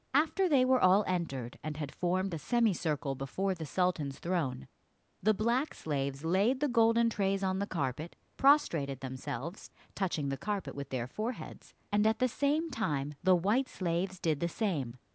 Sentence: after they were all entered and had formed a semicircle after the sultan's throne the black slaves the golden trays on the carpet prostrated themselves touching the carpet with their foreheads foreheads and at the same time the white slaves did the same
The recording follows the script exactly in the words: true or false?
false